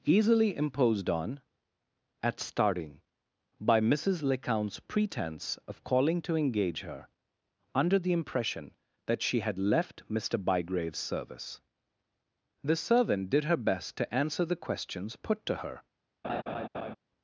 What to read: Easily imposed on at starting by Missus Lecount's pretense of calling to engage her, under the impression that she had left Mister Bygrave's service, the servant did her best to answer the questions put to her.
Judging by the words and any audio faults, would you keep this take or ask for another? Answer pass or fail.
fail